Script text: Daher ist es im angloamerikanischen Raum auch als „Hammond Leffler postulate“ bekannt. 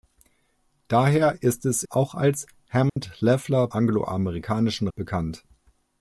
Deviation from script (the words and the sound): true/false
true